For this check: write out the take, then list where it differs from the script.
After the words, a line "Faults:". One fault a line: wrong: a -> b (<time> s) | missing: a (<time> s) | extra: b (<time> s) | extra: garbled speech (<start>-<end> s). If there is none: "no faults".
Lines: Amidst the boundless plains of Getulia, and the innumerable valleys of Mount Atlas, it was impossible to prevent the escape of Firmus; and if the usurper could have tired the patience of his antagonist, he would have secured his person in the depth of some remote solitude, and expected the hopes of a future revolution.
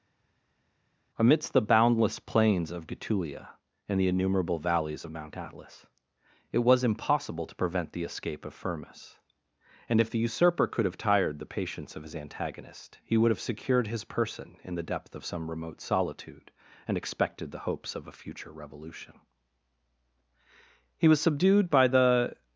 Amidst the boundless plains of Getulia, and the innumerable valleys of Mount Atlas, it was impossible to prevent the escape of Firmus; and if the usurper could have tired the patience of his antagonist, he would have secured his person in the depth of some remote solitude, and expected the hopes of a future revolution. He was subdued by the
Faults:
extra: He was subdued by the (21.0 s)